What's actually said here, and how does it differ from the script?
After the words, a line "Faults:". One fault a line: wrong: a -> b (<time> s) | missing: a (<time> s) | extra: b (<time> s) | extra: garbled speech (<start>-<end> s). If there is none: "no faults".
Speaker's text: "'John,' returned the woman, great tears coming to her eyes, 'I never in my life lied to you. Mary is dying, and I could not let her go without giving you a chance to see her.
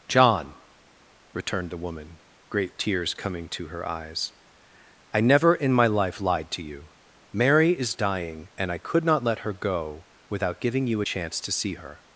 "'John,' returned the woman, great tears coming to her eyes, 'I never in my life lied to you. Mary is dying, and I could not let her go without giving you a chance to see her.
Faults:
no faults